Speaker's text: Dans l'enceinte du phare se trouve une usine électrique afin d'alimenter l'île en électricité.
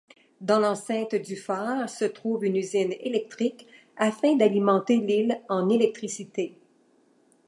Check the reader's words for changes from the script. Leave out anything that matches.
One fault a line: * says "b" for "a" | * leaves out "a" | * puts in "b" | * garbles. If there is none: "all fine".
all fine